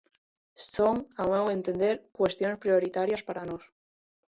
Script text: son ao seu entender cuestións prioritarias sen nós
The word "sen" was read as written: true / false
false